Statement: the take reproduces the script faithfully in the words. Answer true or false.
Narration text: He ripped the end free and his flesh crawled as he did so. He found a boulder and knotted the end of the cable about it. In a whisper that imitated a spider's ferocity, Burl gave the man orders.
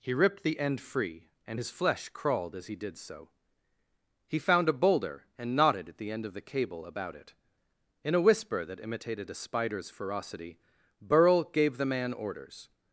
false